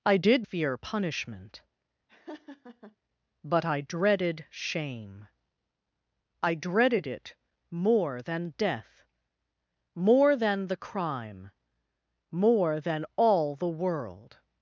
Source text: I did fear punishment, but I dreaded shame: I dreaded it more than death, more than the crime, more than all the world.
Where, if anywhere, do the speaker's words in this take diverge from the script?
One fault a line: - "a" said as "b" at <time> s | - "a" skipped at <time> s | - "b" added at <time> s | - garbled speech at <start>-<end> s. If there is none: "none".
none